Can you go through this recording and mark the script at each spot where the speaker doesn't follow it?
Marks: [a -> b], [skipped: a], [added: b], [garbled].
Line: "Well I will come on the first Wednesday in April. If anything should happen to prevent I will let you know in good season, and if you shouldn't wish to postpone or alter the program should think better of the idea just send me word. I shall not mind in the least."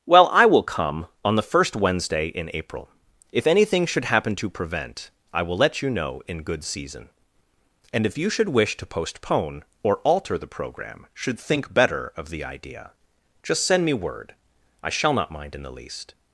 "Well I will come on the first Wednesday in April. If anything should happen to prevent I will let you know in good season, and if you [shouldn't -> should] wish to postpone or alter the program should think better of the idea just send me word. I shall not mind in the least."